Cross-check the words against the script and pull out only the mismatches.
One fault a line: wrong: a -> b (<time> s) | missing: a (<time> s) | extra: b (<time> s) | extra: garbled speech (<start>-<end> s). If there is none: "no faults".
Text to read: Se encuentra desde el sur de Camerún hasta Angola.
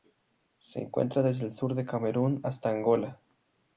no faults